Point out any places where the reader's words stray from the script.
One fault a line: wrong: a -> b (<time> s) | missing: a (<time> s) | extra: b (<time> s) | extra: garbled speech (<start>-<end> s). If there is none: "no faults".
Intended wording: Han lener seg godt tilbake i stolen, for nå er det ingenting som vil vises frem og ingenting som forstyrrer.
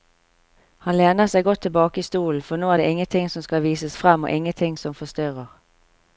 wrong: vil -> skal (3.4 s)